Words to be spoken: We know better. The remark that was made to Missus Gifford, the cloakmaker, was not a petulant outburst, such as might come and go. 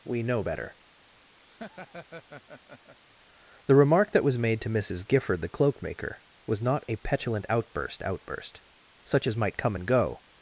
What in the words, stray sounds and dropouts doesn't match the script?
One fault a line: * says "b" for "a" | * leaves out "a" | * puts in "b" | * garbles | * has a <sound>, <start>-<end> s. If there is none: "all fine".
* has a laugh, 1.4-3.0 s
* puts in "outburst"